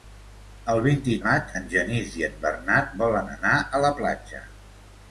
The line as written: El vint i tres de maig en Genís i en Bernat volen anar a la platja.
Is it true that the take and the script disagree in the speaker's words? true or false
true